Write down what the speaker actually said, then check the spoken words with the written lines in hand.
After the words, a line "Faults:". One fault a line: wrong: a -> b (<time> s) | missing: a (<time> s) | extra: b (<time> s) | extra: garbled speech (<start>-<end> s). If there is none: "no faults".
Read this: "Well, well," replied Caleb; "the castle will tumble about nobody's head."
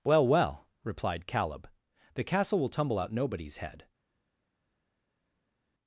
"Well, well," replied Caleb; "the castle will tumble out nobody's head."
Faults:
wrong: about -> out (3.0 s)